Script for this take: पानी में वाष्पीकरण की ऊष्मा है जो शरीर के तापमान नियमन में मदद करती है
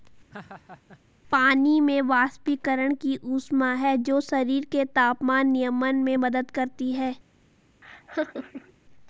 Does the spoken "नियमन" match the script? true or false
true